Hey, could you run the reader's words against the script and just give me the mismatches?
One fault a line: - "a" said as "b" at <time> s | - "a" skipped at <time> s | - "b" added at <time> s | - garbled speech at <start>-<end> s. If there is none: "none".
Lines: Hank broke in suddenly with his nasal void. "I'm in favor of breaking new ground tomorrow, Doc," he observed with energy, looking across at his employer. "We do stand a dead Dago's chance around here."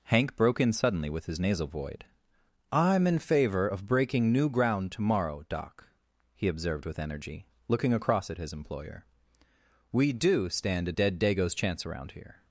none